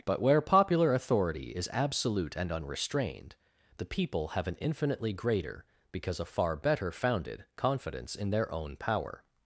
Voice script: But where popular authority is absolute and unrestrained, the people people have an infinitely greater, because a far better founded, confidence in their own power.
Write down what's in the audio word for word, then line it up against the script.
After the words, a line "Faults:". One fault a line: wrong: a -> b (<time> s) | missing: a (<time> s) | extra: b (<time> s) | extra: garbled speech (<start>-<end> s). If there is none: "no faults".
But where popular authority is absolute and unrestrained, the people have an infinitely greater, because a far better founded, confidence in their own power.
Faults:
missing: people (4.3 s)